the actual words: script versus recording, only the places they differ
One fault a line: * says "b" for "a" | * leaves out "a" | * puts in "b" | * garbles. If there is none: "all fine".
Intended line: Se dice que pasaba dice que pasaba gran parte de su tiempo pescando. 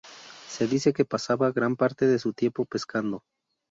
* leaves out "dice que pasaba"